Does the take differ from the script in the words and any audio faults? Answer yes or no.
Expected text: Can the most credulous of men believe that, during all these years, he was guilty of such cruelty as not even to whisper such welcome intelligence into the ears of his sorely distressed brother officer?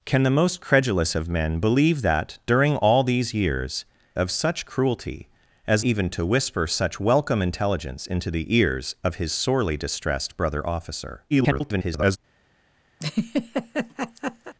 yes